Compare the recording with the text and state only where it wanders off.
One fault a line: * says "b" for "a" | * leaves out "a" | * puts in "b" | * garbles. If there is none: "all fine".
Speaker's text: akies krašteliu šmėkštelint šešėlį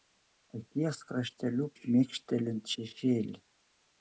all fine